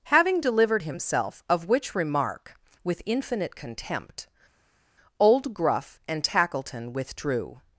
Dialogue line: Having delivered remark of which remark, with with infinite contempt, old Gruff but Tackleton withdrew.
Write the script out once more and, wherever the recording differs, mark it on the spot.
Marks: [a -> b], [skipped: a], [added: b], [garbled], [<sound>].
Having delivered [remark -> himself] of which remark, with [skipped: with] infinite contempt, old Gruff [but -> and] Tackleton withdrew.